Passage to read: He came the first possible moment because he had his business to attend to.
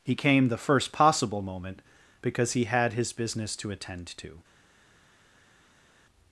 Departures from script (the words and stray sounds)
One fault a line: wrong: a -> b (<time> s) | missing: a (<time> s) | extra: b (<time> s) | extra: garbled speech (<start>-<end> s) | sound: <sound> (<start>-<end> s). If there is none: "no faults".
no faults